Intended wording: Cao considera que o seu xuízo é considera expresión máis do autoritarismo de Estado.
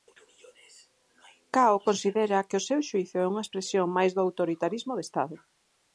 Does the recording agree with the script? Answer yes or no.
no